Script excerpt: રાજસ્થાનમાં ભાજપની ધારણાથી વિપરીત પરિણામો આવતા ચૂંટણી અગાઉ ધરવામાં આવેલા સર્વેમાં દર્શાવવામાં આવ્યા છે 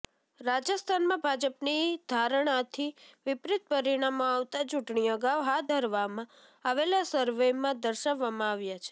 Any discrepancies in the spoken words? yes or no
yes